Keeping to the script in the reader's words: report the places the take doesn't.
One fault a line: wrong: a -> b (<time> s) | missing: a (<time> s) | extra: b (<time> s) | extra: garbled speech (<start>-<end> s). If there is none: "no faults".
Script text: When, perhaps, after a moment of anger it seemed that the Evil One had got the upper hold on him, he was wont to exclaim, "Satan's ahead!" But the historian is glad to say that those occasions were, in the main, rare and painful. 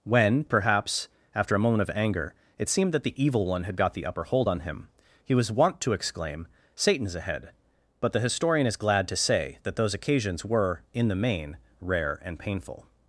no faults